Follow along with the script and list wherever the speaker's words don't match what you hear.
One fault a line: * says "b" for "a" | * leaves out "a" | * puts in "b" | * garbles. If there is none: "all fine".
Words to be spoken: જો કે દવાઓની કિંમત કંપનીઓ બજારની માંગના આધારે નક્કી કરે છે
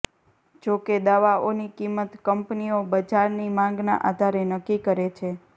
all fine